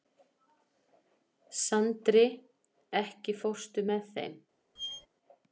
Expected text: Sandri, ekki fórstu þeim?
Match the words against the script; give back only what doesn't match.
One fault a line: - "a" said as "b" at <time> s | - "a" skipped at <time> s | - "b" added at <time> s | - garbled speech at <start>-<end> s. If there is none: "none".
- "með" added at 3.9 s